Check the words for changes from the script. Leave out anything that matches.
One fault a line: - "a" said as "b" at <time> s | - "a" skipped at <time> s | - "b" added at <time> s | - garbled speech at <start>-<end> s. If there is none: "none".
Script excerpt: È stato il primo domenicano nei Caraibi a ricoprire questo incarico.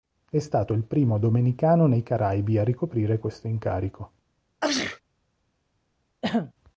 none